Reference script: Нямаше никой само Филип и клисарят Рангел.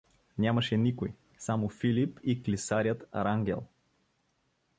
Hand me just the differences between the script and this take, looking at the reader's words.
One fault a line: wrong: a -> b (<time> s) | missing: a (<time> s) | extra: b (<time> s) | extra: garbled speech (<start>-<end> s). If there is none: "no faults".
no faults